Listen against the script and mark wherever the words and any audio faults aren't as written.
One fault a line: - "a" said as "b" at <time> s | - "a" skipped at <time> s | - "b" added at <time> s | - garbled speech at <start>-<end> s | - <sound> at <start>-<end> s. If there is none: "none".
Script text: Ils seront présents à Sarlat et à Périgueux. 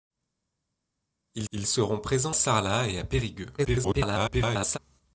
- "ils" added at 1.5 s
- "à" skipped at 2.4 s
- garbled speech at 3.6-4.8 s